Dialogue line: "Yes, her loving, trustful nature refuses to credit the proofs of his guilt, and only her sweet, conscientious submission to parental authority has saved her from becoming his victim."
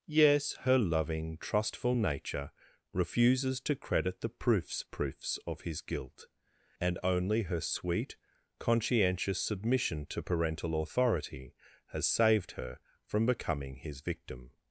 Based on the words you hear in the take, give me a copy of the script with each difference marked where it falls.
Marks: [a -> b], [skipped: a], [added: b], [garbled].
"Yes, her loving, trustful nature refuses to credit the proofs [added: proofs] of his guilt, and only her sweet, conscientious submission to parental authority has saved her from becoming his victim."